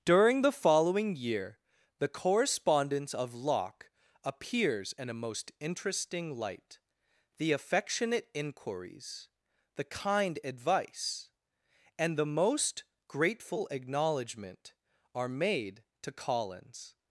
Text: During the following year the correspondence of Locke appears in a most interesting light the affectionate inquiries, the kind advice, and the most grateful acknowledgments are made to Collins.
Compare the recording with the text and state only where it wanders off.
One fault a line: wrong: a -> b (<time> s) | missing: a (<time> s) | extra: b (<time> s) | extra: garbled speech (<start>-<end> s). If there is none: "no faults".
wrong: acknowledgments -> acknowledgment (13.7 s)